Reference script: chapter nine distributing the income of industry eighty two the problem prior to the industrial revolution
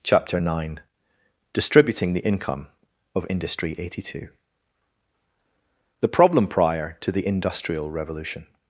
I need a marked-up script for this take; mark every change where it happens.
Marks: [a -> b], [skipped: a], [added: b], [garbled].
chapter nine distributing the income of industry eighty two the problem prior to the industrial revolution